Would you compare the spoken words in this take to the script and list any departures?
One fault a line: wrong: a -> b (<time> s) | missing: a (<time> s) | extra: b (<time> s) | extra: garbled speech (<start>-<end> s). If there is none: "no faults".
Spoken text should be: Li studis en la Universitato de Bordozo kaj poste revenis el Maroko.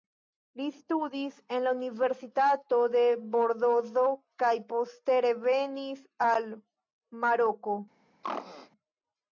wrong: el -> al (6.3 s)